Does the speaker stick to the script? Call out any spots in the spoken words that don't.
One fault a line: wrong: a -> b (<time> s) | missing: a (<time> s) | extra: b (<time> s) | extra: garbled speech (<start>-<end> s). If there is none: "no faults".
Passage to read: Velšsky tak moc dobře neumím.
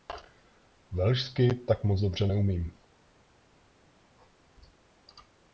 no faults